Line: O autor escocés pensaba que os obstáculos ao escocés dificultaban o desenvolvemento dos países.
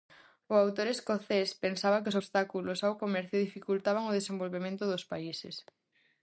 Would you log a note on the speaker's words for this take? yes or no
yes